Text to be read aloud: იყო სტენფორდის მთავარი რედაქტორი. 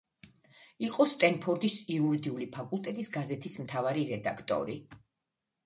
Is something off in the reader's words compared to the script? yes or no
yes